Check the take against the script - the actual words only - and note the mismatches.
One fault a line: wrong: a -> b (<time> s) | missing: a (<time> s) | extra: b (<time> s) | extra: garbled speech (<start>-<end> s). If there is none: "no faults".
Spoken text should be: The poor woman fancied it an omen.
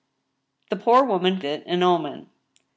missing: fancied (1.4 s)